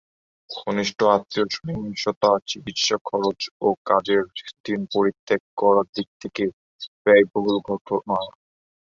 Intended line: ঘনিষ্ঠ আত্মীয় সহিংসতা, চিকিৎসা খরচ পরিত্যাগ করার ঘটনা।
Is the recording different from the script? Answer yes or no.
yes